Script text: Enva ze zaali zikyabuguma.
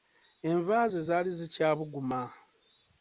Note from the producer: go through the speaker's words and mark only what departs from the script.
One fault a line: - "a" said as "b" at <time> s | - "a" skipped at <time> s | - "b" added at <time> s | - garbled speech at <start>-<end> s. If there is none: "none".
none